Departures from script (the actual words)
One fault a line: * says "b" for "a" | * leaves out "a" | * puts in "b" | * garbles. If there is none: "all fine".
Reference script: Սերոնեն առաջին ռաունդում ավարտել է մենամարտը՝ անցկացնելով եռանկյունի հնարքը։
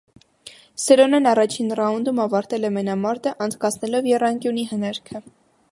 all fine